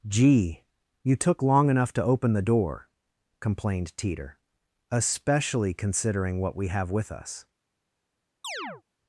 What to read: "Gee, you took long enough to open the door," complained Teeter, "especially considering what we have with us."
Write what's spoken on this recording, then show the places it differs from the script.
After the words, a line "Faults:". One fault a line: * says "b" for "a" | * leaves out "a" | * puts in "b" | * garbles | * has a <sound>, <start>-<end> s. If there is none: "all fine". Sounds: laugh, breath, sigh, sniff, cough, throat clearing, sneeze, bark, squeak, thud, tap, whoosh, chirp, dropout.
"Gee, you took long enough to open the door," complained Teeter, "especially considering what we have with us."
Faults:
* has a chirp, 8.4-8.8 s